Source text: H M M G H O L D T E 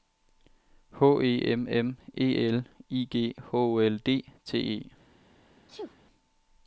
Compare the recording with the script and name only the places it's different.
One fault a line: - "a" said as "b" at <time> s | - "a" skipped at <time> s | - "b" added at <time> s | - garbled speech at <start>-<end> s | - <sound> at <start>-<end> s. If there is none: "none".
- "E" added at 1.2 s
- "E L I" added at 2.2 s
- sneeze at 5.6-6.0 s